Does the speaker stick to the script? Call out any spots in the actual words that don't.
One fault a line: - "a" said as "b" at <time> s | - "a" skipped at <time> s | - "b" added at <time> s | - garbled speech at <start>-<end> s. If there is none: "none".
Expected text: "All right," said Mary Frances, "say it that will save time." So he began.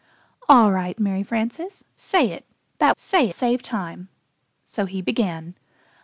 - "said" skipped at 1.0 s
- "will" said as "say" at 3.0 s